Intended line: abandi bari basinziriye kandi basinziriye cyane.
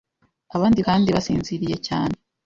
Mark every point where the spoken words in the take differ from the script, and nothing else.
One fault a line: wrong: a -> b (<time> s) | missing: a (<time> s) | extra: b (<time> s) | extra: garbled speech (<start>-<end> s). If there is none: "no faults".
missing: bari basinziriye (0.8 s)